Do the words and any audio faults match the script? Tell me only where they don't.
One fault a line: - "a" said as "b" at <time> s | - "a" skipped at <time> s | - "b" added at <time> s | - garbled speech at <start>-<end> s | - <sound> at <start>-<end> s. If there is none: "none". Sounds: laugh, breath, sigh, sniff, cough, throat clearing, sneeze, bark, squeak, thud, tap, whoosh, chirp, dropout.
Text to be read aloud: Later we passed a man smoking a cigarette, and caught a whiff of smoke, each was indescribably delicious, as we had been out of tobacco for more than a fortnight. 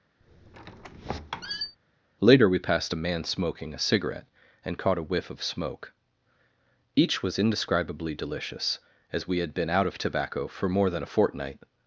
- squeak at 0.2-1.8 s